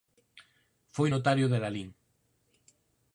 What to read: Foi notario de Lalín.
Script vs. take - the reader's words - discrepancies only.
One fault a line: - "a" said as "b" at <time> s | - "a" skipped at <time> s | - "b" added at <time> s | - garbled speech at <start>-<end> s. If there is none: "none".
none